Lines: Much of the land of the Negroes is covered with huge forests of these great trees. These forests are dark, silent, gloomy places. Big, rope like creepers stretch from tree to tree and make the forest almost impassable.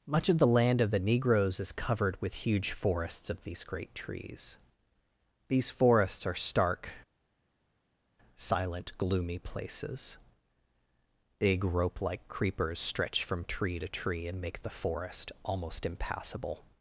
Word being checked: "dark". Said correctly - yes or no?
no